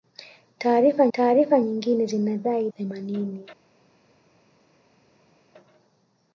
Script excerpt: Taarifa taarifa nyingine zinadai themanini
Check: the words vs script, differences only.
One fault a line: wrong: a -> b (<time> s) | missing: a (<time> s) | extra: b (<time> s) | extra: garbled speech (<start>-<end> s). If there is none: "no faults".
no faults